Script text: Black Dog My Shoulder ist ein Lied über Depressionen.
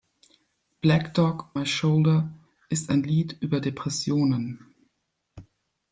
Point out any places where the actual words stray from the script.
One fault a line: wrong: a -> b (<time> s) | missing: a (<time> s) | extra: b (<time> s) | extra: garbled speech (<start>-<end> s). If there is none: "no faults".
no faults